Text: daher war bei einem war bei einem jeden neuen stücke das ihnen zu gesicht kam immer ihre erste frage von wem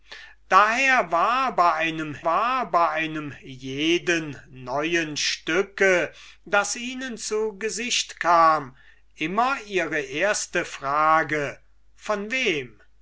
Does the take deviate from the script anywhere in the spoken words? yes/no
no